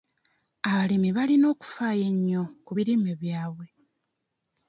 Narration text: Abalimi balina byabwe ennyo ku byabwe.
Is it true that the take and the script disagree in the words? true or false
true